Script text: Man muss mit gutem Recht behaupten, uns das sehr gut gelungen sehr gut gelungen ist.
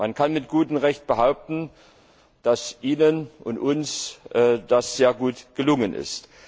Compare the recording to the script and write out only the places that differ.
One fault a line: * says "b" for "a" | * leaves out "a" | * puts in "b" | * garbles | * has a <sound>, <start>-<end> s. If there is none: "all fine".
* says "kann" for "muss"
* says "dass Ihnen und uns das" for "uns das sehr gut gelungen"